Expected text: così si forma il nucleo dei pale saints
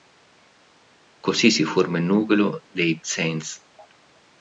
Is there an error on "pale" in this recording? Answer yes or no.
yes